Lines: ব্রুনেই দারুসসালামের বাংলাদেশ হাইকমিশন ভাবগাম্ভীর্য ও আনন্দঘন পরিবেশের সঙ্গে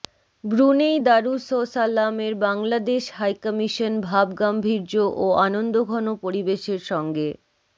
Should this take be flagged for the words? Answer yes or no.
no